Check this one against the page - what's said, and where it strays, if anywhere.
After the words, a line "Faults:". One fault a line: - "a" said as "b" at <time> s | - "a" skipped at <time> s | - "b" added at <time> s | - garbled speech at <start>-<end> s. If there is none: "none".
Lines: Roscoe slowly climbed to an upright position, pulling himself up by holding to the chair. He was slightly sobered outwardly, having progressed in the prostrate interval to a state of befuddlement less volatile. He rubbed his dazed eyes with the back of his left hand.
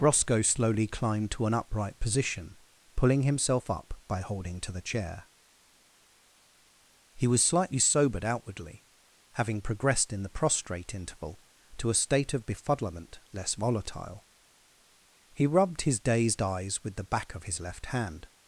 Roscoe slowly climbed to an upright position, pulling himself up by holding to the chair. He was slightly sobered outwardly, having progressed in the prostrate interval to a state of befuddlement less volatile. He rubbed his dazed eyes with the back of his left hand.
Faults:
none